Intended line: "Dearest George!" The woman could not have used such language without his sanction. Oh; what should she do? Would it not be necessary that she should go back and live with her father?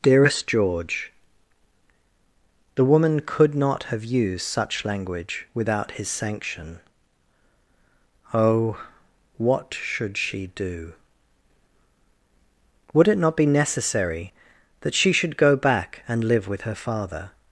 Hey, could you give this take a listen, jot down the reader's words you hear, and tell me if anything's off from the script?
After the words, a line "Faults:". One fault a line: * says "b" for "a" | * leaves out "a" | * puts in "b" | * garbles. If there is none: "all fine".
"Dearest George!" The woman could not have used such language without his sanction. Oh; what should she do? Would it not be necessary that she should go back and live with her father?
Faults:
all fine